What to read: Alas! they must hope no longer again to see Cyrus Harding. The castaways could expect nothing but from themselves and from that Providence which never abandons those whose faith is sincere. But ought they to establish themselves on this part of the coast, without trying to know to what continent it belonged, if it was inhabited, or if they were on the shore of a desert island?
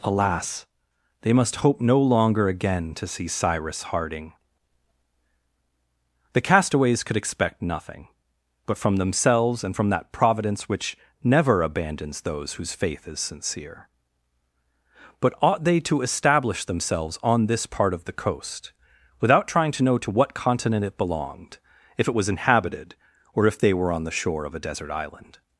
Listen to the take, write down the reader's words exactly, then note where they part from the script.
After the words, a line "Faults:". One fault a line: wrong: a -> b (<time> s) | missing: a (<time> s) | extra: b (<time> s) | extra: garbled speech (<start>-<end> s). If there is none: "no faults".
Alas! they must hope no longer again to see Cyrus Harding. The castaways could expect nothing but from themselves and from that Providence which never abandons those whose faith is sincere. But ought they to establish themselves on this part of the coast, without trying to know to what continent it belonged, if it was inhabited, or if they were on the shore of a desert island?
Faults:
no faults